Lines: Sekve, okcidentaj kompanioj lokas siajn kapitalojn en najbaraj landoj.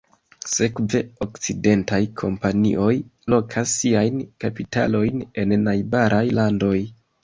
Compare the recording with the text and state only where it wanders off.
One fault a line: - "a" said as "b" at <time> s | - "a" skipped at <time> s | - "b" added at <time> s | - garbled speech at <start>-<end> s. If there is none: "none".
none